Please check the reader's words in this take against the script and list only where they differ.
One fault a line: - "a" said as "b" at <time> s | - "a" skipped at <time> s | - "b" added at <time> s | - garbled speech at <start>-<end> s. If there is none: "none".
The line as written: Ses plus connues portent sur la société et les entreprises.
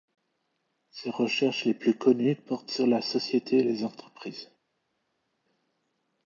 - "recherches les" added at 1.1 s